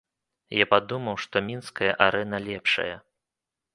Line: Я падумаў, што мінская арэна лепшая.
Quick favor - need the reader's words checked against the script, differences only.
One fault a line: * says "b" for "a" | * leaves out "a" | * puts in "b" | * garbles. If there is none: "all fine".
all fine